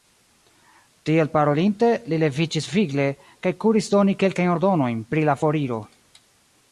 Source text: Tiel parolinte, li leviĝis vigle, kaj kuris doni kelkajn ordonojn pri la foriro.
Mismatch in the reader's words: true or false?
false